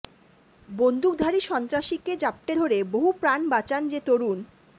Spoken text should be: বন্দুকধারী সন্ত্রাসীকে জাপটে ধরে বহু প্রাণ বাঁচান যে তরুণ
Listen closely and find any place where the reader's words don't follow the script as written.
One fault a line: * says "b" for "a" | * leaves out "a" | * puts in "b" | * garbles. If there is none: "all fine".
all fine